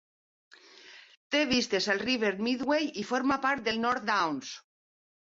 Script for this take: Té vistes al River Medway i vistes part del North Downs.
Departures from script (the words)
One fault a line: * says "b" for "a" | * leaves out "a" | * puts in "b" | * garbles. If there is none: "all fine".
* says "forma" for "vistes"